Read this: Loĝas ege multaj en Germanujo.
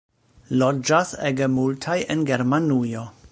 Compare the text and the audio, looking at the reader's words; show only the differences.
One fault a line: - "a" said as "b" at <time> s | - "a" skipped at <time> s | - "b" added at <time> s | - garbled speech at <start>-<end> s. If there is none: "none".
none